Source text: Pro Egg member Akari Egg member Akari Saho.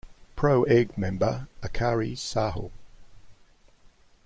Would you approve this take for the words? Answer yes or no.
no